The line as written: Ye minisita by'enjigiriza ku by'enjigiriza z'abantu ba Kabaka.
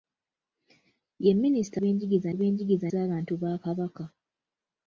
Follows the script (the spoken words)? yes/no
yes